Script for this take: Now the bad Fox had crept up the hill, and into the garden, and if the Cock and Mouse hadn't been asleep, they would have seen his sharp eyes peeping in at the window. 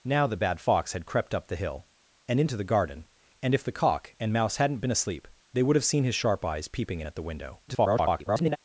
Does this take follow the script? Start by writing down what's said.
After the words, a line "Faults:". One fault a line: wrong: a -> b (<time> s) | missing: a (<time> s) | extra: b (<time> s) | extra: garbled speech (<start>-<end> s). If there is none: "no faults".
Now the bad Fox had crept up the hill, and into the garden, and if the Cock and Mouse hadn't been asleep, they would have seen his sharp eyes peeping in at the window. [garbled]
Faults:
extra: garbled speech (7.7-8.6 s)